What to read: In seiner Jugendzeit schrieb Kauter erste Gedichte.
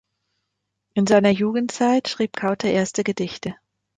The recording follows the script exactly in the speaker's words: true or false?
true